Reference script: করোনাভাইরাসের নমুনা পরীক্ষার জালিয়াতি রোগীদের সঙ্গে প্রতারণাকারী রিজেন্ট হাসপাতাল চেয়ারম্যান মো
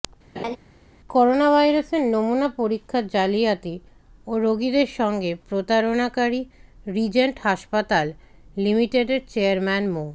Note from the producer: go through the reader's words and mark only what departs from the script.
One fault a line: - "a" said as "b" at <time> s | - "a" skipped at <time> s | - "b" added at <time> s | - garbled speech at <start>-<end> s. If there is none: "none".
- "ও" added at 4.3 s
- "লিমিটেডের" added at 8.6 s